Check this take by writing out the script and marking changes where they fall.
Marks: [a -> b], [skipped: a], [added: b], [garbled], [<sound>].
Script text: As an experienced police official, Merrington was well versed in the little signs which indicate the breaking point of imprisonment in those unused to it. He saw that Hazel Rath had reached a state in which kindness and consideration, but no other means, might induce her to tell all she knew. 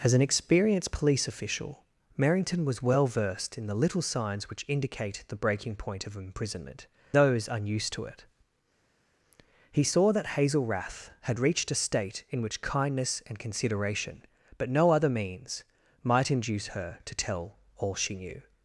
As an experienced police official, Merrington was well versed in the little signs which indicate the breaking point of imprisonment [skipped: in] those unused to it. He saw that Hazel Rath had reached a state in which kindness and consideration, but no other means, might induce her to tell all she knew.